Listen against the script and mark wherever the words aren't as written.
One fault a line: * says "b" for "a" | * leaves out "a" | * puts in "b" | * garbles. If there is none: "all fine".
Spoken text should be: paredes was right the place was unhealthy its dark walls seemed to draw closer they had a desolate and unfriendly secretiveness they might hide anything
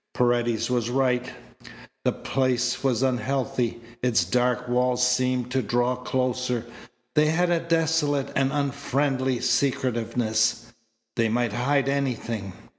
all fine